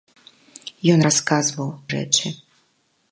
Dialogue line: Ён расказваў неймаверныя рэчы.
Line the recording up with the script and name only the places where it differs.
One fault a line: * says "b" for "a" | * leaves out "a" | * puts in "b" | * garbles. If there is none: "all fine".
* leaves out "неймаверныя"